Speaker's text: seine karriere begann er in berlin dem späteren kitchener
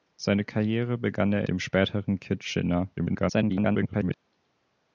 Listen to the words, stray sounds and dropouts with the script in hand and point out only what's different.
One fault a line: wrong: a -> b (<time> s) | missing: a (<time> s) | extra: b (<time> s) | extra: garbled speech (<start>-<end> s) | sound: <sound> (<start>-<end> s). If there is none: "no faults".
missing: in berlin (1.4 s)
extra: garbled speech (3.0-4.2 s)